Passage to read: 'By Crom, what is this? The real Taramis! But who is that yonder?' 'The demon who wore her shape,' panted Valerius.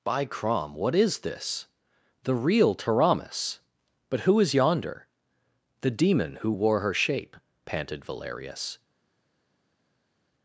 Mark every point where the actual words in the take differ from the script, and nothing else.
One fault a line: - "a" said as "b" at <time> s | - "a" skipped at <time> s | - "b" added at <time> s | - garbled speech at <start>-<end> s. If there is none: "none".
- "that" skipped at 4.5 s